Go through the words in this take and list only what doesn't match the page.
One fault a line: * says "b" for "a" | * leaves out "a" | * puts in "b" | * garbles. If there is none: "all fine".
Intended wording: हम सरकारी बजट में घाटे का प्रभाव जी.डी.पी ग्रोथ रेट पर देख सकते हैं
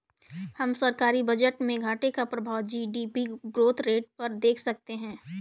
all fine